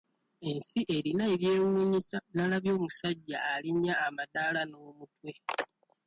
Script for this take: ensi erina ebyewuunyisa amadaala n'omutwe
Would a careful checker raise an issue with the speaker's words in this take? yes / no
yes